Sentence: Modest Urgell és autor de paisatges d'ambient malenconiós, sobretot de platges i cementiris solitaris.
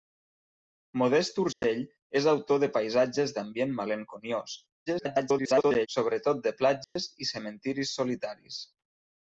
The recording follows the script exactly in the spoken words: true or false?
false